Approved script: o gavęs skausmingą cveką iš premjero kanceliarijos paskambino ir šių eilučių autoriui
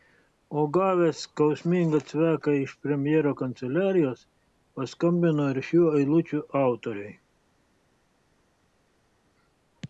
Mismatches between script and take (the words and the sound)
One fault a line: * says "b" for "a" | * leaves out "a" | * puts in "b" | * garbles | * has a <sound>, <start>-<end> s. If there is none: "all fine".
all fine